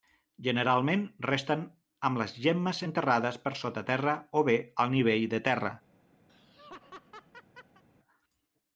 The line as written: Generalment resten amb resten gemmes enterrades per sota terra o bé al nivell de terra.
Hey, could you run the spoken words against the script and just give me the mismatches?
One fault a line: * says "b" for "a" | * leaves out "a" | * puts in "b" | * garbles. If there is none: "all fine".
* says "les" for "resten"